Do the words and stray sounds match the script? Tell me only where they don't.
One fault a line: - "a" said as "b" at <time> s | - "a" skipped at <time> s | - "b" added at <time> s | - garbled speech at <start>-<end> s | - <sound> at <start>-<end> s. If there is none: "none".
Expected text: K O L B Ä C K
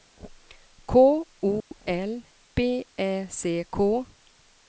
- dropout at 1.6-1.7 s